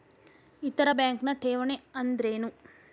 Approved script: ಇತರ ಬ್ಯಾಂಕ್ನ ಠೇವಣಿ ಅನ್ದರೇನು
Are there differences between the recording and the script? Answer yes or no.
no